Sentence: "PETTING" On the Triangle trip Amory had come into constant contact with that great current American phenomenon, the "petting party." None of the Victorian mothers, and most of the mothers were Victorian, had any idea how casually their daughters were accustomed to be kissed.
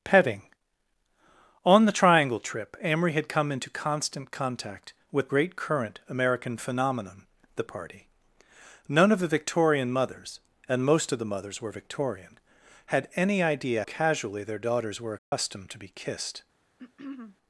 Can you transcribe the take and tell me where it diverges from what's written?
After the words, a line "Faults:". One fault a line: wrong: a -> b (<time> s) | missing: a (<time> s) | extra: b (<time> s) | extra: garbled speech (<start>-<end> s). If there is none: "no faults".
"PETTING" On the Triangle trip Amory had come into constant contact with great current American phenomenon, the "party." None of the Victorian mothers, and most of the mothers were Victorian, had any idea casually their daughters were accustomed to be kissed.
Faults:
missing: that (5.3 s)
missing: petting (7.6 s)
missing: how (13.8 s)